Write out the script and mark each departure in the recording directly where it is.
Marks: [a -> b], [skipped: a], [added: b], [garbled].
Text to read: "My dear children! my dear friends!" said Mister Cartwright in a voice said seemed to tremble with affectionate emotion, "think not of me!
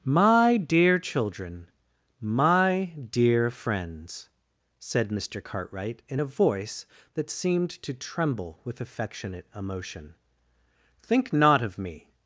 "My dear children! my dear friends!" said Mister Cartwright in a voice [said -> that] seemed to tremble with affectionate emotion, "think not of me!